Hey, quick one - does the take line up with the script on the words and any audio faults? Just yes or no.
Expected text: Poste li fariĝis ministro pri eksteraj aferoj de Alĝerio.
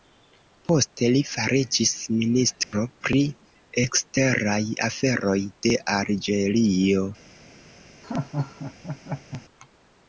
no